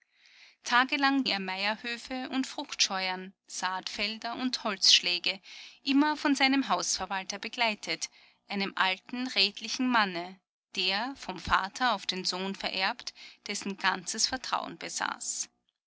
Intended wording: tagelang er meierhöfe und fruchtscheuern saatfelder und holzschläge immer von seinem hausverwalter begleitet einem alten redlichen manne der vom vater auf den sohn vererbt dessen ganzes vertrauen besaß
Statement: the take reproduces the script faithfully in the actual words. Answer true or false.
true